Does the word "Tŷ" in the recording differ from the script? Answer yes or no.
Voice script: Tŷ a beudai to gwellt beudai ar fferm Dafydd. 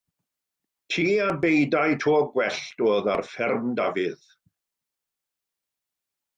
no